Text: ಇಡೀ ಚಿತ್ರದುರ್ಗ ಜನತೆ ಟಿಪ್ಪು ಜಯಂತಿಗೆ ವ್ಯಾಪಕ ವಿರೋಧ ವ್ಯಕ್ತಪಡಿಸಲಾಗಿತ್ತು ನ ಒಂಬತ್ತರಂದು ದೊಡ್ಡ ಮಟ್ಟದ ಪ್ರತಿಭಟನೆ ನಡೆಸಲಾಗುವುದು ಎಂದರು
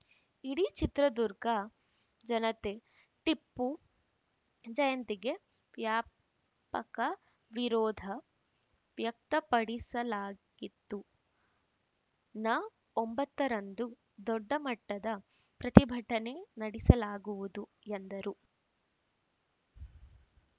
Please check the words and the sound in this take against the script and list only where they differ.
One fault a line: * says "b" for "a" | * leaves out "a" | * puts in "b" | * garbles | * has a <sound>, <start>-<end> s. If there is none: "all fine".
all fine